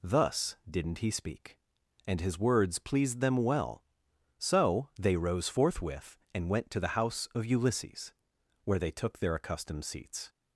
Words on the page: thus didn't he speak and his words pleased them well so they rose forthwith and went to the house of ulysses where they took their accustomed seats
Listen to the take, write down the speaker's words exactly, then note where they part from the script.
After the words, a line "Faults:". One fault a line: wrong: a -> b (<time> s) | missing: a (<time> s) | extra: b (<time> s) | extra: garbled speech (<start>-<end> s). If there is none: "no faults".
thus didn't he speak and his words pleased them well so they rose forthwith and went to the house of ulysses where they took their accustomed seats
Faults:
no faults